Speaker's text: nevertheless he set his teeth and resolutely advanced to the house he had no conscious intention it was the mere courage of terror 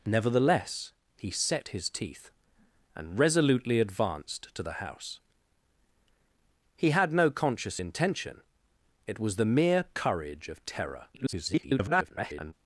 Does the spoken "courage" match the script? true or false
true